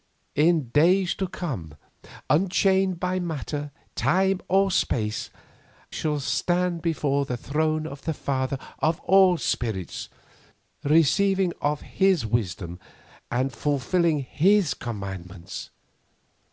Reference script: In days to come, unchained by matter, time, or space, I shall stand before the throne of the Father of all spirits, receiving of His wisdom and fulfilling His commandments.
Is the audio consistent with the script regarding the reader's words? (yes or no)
no